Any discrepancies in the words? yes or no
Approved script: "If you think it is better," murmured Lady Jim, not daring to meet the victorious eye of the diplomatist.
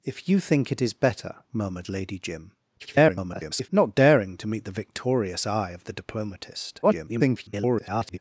yes